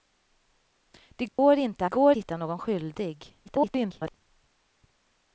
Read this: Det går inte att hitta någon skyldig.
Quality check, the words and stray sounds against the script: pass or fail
fail